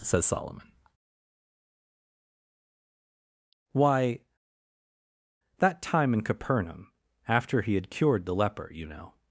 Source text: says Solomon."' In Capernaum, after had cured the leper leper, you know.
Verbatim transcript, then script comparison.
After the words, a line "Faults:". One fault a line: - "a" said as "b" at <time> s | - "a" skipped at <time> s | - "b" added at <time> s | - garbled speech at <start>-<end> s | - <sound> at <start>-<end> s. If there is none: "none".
says Solomon."' Why, that time in Capernaum, after he had cured the leper, you know.
Faults:
- "Why that time" added at 3.7 s
- "he" added at 7.6 s
- "leper" skipped at 8.7 s